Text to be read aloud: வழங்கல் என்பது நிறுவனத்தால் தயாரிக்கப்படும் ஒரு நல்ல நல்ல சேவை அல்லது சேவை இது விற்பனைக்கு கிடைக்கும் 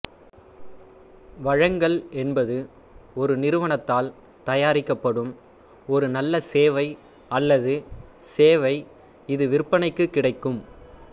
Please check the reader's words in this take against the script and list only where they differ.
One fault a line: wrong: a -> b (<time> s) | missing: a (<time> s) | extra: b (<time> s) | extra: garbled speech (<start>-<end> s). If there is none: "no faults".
extra: ஒரு (3.1 s)
missing: நல்ல (6.4 s)